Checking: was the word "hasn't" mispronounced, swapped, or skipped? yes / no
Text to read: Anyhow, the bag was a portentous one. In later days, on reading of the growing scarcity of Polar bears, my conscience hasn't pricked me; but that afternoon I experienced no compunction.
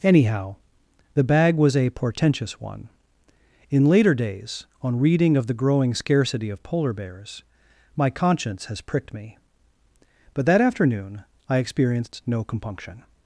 yes